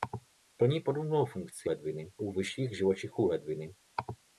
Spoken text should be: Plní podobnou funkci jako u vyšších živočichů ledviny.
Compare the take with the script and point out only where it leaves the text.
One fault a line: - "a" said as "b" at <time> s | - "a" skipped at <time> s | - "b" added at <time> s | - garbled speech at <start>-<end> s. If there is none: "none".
- "jako" said as "ledviny" at 1.6 s